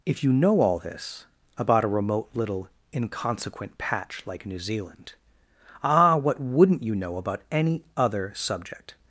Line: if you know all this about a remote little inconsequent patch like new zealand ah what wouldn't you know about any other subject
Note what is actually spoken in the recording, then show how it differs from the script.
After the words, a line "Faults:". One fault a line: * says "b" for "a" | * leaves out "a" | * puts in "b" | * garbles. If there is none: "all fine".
if you know all this about a remote little inconsequent patch like new zealand ah what wouldn't you know about any other subject
Faults:
all fine